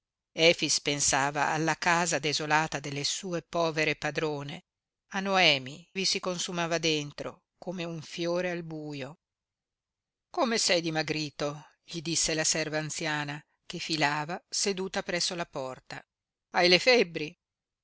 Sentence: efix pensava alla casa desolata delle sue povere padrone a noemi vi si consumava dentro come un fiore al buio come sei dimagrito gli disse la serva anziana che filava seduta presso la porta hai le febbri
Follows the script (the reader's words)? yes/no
yes